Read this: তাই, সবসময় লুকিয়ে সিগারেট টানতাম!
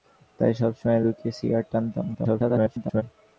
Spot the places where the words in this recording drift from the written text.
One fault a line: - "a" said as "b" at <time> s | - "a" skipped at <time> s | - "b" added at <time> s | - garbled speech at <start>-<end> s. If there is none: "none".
- garbled speech at 2.1-3.0 s